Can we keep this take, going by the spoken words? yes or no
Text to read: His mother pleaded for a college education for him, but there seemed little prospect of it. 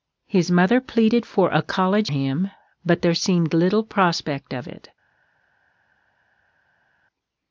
no